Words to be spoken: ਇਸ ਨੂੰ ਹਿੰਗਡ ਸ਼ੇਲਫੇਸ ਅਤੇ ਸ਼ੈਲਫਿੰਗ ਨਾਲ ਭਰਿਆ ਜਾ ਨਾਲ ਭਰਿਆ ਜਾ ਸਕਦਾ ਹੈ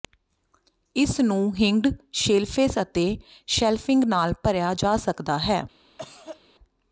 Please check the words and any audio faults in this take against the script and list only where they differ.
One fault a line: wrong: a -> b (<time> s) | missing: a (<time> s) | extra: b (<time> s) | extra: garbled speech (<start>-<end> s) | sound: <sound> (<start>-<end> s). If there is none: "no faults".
missing: ਨਾਲ ਭਰਿਆ ਜਾ (5.0 s)
sound: cough (6.0-6.4 s)